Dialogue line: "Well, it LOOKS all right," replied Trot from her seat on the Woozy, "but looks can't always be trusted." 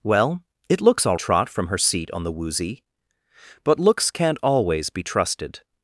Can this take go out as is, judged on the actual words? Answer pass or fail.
fail